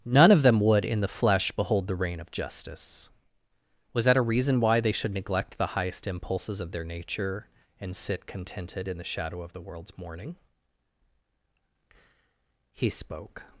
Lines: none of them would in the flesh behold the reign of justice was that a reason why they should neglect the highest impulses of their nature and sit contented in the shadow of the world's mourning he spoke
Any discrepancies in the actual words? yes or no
no